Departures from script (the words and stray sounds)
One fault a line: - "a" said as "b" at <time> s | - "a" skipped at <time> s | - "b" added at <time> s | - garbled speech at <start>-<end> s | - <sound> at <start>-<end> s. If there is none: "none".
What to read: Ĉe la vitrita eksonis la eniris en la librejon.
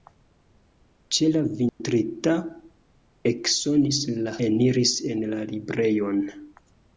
- dropout at 1.7-1.8 s